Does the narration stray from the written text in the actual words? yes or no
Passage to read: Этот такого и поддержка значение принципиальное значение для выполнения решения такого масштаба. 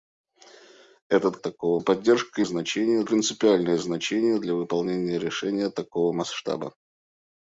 no